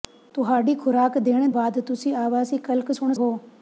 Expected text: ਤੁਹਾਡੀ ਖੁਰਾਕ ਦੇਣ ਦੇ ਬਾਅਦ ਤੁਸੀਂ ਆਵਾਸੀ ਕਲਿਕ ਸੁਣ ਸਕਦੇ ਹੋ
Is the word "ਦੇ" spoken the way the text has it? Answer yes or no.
no